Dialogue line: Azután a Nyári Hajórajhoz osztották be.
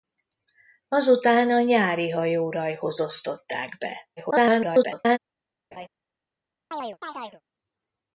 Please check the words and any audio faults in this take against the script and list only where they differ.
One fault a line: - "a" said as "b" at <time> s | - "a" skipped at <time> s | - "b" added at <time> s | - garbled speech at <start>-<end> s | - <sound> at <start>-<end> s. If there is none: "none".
- garbled speech at 4.2-5.2 s
- laugh at 5.7-5.9 s
- chirp at 6.7-7.4 s